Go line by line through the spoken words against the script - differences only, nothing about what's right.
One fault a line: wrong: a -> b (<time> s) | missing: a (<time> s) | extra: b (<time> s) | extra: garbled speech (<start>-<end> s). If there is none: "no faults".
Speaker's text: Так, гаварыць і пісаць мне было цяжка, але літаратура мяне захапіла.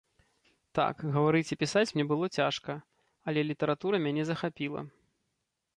no faults